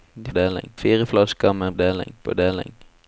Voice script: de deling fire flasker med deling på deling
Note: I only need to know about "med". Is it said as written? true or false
true